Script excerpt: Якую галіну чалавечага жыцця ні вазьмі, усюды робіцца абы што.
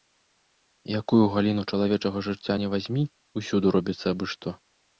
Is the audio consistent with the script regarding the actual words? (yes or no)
yes